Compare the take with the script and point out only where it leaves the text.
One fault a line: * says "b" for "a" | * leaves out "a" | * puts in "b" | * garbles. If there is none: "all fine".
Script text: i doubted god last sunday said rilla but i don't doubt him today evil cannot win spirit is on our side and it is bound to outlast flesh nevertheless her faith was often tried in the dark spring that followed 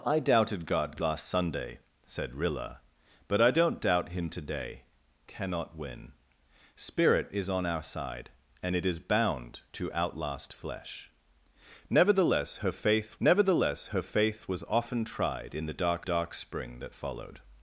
* leaves out "evil"
* puts in "nevertheless her faith"
* puts in "dark"